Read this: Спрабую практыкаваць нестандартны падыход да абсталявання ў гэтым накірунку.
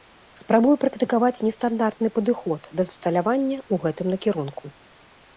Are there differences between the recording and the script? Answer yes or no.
no